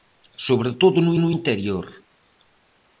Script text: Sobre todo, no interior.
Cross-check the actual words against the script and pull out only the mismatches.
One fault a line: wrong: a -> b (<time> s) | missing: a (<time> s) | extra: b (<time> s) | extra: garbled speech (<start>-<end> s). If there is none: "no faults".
extra: no (1.2 s)